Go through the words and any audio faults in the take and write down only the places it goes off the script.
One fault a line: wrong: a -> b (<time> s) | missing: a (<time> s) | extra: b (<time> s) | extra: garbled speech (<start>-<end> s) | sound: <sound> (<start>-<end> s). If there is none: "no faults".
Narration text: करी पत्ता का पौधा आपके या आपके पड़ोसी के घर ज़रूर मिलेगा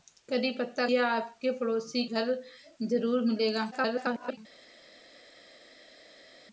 missing: का पौधा आपके (0.9 s)
missing: के (2.0 s)
extra: garbled speech (3.7-4.4 s)